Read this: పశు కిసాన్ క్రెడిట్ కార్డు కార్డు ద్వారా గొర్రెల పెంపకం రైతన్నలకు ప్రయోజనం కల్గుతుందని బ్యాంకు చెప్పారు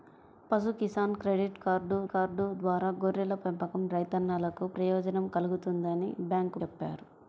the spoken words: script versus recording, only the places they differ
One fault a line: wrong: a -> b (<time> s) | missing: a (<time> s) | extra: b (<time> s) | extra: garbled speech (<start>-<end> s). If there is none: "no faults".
no faults